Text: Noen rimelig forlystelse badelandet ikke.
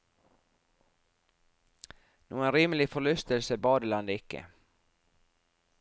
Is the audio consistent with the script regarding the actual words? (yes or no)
yes